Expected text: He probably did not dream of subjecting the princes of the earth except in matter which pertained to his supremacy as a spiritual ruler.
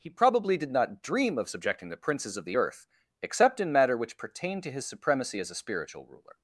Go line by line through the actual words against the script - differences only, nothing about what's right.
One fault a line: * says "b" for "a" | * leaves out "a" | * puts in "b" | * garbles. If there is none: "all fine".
all fine